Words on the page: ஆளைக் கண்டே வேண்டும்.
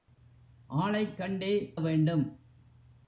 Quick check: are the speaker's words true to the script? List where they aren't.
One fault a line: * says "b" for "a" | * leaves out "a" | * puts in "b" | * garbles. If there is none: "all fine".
all fine